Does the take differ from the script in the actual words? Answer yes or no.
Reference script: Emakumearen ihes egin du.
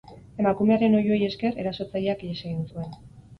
yes